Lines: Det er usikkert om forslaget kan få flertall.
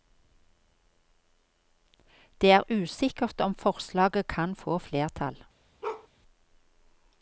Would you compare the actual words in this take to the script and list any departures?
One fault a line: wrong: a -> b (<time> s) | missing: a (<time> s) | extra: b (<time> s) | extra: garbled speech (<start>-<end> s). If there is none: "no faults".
no faults